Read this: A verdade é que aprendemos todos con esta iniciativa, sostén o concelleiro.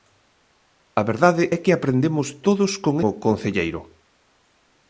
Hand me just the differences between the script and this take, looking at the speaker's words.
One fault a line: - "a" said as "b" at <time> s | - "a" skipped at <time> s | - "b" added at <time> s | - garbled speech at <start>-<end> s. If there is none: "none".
- "esta iniciativa sostén" skipped at 2.9 s